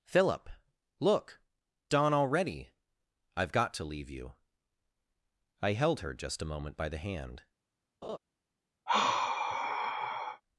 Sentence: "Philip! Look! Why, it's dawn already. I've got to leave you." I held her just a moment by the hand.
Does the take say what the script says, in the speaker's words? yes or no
no